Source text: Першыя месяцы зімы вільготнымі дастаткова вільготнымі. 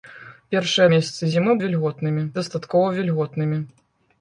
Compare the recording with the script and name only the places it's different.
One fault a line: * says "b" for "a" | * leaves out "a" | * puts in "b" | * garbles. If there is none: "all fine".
all fine